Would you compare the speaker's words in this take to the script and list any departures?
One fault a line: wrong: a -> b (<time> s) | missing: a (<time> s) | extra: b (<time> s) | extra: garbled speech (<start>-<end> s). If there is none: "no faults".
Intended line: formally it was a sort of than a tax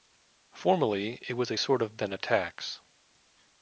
no faults